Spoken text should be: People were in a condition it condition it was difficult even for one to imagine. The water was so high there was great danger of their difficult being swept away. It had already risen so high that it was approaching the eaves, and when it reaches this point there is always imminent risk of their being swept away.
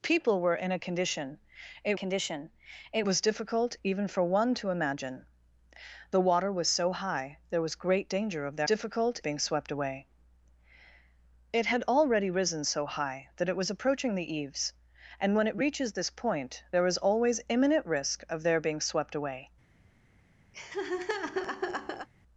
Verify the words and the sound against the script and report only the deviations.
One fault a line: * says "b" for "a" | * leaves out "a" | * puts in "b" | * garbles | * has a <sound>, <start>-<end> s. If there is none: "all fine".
* has a laugh, 20.5-22.1 s